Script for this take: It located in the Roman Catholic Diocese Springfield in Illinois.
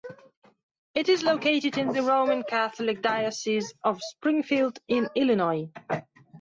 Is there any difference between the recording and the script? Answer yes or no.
yes